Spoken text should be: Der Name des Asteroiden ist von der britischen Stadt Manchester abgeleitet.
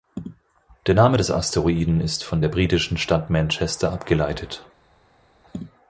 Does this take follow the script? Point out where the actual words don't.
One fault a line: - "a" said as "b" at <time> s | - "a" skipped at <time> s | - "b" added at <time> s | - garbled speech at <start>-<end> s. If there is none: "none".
none